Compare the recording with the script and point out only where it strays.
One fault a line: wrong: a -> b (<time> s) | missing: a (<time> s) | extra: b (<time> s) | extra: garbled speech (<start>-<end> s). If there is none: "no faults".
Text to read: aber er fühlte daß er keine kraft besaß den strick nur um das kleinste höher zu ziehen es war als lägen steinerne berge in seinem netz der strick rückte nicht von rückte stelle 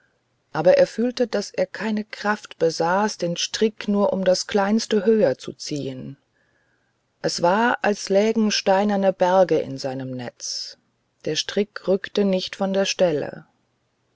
wrong: rückte -> der (12.7 s)